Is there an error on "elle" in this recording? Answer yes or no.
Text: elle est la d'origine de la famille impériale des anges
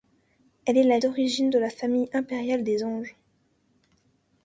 no